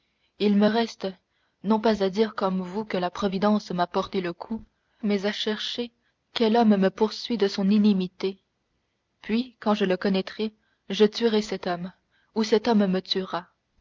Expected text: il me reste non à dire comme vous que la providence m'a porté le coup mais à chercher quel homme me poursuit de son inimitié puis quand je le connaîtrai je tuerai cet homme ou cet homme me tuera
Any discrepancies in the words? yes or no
yes